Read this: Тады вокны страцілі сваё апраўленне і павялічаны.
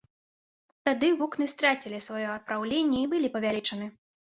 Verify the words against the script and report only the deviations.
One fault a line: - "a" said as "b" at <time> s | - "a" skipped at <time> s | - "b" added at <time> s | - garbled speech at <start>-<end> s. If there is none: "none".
- "былі" added at 3.1 s